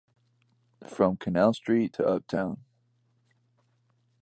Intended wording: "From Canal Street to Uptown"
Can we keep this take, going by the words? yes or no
yes